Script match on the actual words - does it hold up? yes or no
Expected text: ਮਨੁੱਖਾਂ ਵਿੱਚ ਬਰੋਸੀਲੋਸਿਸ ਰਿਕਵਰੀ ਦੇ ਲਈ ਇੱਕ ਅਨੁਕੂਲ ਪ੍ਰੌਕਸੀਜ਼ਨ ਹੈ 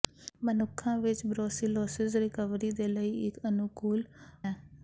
no